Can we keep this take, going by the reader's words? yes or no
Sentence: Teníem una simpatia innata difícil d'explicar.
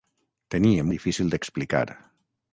no